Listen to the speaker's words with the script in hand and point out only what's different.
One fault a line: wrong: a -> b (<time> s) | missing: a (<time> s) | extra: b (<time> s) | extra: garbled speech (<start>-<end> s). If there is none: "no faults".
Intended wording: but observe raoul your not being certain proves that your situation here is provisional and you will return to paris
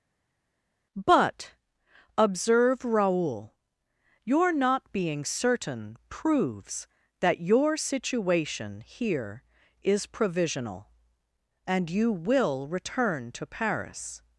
no faults